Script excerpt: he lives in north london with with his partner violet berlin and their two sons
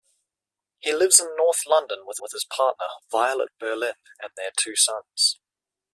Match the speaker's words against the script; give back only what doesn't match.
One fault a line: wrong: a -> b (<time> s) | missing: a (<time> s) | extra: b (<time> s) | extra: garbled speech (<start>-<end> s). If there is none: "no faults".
no faults